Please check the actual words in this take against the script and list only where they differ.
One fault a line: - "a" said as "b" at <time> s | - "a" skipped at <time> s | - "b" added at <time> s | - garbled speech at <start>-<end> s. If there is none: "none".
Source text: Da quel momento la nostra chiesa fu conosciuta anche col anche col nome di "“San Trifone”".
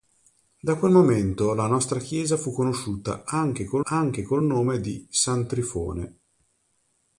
none